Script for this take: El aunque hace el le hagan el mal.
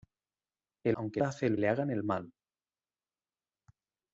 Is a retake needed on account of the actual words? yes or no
no